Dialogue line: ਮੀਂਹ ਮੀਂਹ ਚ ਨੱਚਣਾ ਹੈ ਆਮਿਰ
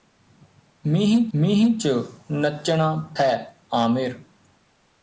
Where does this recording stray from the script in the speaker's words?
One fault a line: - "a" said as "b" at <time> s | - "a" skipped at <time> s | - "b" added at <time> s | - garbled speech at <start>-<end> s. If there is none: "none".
none